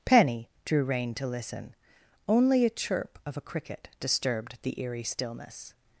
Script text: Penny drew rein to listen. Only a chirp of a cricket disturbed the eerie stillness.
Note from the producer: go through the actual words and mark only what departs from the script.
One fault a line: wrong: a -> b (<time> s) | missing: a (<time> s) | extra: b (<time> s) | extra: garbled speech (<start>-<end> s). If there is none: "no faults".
no faults